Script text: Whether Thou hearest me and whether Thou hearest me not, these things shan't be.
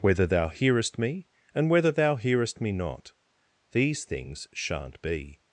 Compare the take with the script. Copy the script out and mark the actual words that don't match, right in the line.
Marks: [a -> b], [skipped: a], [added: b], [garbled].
Whether Thou hearest me and whether Thou hearest me not, these things shan't be.